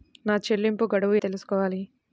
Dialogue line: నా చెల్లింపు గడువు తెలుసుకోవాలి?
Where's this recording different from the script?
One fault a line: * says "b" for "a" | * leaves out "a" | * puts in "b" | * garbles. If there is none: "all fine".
all fine